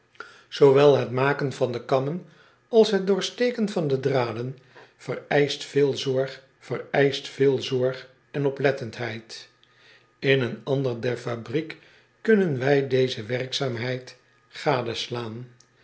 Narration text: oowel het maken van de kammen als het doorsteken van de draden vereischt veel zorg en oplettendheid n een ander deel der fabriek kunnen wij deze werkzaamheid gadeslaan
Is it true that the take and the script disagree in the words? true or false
true